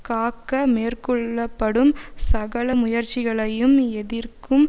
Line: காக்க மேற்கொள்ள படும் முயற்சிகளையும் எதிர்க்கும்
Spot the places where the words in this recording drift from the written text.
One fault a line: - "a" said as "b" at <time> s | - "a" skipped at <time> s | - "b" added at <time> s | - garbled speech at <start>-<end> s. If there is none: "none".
- "சகல" added at 2.2 s